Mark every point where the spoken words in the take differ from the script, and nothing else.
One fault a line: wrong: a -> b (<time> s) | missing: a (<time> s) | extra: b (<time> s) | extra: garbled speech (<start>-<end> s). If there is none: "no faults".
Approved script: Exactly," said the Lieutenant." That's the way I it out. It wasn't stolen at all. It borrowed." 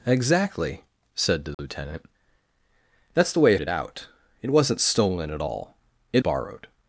no faults